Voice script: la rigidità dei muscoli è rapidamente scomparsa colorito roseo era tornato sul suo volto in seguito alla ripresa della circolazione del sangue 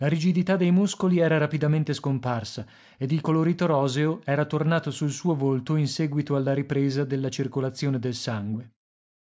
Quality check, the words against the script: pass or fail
fail